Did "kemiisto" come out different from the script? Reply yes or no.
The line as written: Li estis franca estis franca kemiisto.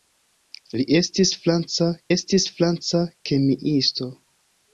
no